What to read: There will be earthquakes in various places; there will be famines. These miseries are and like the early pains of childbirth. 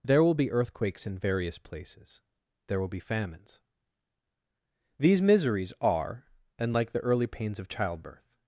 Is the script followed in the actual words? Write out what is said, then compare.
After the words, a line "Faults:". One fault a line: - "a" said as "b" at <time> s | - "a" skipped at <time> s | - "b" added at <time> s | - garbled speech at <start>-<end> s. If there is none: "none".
There will be earthquakes in various places; there will be famines. These miseries are and like the early pains of childbirth.
Faults:
none